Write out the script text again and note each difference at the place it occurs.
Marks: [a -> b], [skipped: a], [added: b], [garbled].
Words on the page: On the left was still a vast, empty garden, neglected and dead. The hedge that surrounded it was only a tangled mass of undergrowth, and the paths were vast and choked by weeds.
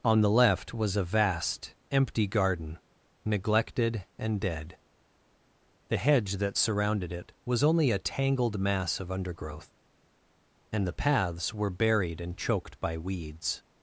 On the left was [skipped: still] a vast, empty garden, neglected and dead. The hedge that surrounded it was only a tangled mass of undergrowth, and the paths were [vast -> buried] and choked by weeds.